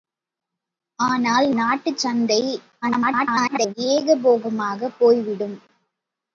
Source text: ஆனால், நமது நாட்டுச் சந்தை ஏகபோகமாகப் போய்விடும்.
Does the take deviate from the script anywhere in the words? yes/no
yes